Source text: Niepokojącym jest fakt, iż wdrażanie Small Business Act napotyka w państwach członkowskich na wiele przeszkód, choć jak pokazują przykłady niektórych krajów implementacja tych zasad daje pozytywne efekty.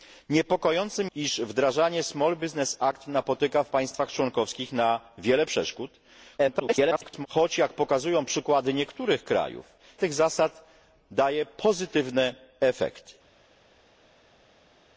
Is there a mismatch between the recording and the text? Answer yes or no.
yes